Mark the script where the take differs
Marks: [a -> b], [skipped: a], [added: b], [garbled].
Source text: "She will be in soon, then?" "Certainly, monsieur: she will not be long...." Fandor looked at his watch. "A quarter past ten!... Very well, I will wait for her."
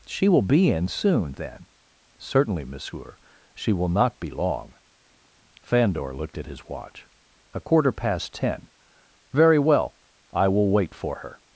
"She will be in soon, then?" "Certainly, monsieur: she will not be long...." Fandor looked at his watch. "A quarter past ten!... Very well, I will wait for her."